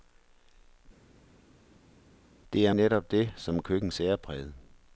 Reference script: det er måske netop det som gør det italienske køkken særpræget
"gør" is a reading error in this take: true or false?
true